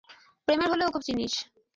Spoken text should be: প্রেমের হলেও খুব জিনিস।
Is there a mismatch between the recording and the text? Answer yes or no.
no